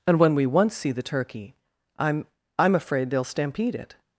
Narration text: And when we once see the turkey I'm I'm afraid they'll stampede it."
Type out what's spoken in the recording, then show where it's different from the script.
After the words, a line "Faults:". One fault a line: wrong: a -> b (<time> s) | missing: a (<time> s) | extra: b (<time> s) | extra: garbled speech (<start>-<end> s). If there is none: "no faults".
And when we once see the turkey I'm I'm afraid they'll stampede it."
Faults:
no faults